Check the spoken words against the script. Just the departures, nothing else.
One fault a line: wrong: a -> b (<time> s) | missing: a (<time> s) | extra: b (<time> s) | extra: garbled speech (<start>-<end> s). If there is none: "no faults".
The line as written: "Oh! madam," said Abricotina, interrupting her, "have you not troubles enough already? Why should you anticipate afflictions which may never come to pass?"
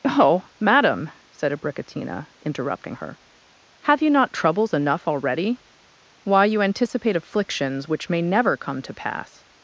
missing: should (6.5 s)